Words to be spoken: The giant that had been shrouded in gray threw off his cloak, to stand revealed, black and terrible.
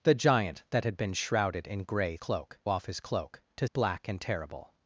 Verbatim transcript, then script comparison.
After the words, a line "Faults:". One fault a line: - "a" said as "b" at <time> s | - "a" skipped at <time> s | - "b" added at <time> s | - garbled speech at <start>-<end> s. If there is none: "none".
The giant that had been shrouded in gray cloak off his cloak, to black and terrible.
Faults:
- "threw" said as "cloak" at 2.2 s
- "stand revealed" skipped at 3.7 s